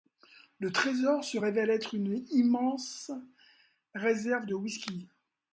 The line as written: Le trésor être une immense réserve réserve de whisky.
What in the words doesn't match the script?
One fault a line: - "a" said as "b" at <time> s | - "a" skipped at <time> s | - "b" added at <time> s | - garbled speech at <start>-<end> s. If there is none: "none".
- "se révèle" added at 1.2 s
- "réserve" skipped at 4.5 s